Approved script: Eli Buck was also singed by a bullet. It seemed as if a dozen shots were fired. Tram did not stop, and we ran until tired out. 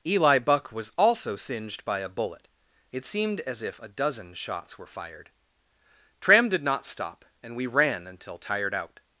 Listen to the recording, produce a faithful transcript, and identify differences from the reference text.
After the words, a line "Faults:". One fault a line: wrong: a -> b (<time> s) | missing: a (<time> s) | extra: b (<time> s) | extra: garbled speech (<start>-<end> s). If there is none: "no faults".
Eli Buck was also singed by a bullet. It seemed as if a dozen shots were fired. Tram did not stop, and we ran until tired out.
Faults:
no faults